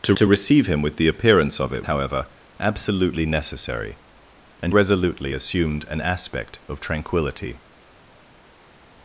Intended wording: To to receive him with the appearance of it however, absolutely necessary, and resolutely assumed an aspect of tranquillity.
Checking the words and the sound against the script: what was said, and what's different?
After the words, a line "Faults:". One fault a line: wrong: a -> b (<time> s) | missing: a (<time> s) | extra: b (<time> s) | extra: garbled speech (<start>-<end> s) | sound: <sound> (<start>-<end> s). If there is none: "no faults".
To to receive him with the appearance of it however, absolutely necessary, and resolutely assumed an aspect of tranquillity.
Faults:
no faults